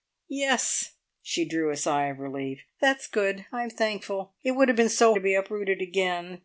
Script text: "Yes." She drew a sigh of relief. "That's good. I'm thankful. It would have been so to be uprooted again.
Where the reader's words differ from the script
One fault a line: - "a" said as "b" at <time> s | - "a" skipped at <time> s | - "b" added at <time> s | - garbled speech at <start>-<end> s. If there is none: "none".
none